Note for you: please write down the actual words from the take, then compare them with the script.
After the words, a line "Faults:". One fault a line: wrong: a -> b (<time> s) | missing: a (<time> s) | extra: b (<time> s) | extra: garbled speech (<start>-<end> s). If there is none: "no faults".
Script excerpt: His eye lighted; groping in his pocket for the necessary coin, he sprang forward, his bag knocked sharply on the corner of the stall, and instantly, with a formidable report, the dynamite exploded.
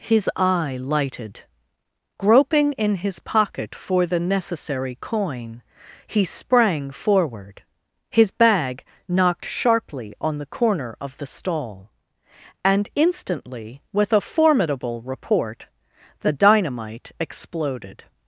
His eye lighted; groping in his pocket for the necessary coin, he sprang forward, his bag knocked sharply on the corner of the stall, and instantly, with a formidable report, the dynamite exploded.
Faults:
no faults